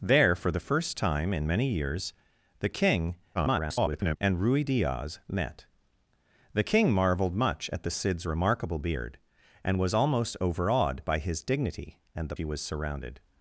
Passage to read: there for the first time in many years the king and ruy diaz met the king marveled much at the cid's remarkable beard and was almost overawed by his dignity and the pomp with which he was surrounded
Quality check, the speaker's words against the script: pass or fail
fail